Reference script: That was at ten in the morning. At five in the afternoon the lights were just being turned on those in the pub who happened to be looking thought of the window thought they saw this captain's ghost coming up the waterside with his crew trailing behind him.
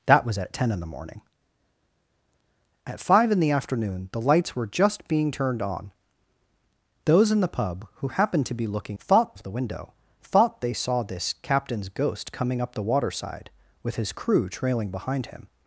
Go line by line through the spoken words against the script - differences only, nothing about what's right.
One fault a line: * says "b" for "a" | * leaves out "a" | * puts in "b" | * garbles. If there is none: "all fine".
all fine